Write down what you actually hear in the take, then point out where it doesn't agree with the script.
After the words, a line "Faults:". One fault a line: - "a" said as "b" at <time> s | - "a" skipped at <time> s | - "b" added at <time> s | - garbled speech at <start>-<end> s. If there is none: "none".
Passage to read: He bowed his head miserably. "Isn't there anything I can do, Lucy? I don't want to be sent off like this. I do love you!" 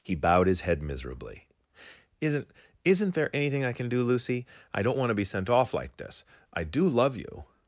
He bowed his head miserably. "Isn't Isn't there anything I can do, Lucy? I don't want to be sent off like this. I do love you!"
Faults:
- "Isn't" added at 2.8 s